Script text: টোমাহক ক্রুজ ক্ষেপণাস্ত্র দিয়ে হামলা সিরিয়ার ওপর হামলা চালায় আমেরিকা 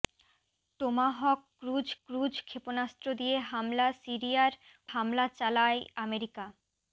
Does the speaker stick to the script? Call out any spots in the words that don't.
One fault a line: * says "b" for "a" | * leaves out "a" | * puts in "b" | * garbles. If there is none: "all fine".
* puts in "ক্রুজ"
* leaves out "ওপর"